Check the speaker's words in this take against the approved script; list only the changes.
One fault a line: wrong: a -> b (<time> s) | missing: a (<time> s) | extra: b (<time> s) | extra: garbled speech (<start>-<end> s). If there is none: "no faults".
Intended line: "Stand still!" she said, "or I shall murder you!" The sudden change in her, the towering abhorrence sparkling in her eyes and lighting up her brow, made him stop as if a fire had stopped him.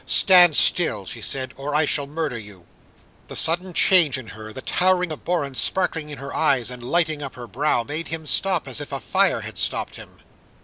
no faults